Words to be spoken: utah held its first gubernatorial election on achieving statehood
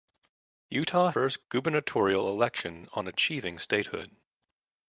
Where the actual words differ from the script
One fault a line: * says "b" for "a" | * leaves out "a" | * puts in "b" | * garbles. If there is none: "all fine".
* leaves out "held its"